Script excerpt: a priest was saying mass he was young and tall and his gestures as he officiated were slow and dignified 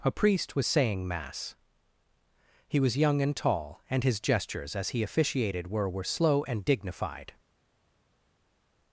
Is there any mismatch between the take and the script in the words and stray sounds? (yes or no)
yes